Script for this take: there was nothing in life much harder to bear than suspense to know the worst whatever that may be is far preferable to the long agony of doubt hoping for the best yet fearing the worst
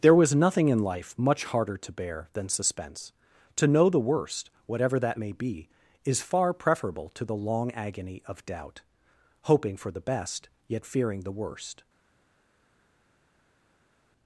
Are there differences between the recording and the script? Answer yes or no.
no